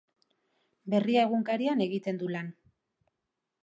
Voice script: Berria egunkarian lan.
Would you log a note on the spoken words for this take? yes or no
yes